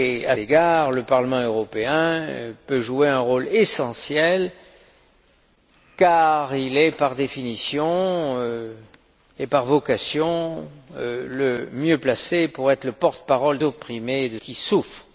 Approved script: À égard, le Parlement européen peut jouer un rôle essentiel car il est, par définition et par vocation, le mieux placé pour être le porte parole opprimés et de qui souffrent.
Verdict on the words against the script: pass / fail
pass